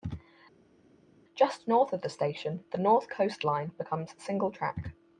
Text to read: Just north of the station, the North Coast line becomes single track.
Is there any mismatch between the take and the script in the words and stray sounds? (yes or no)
no